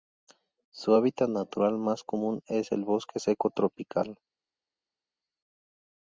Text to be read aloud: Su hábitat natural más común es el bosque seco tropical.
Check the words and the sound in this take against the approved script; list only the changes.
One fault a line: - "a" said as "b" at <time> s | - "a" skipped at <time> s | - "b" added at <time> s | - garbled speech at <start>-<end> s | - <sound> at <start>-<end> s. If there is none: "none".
none